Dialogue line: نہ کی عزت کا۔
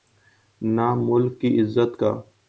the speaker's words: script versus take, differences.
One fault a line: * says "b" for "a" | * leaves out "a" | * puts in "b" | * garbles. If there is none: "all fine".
* puts in "ملک"